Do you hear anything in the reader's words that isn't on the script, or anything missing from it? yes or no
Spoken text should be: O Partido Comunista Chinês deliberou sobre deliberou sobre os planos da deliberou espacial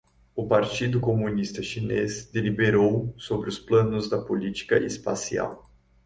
yes